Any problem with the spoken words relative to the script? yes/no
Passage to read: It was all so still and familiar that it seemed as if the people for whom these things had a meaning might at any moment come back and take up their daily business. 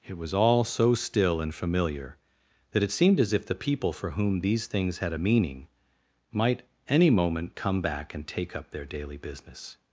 yes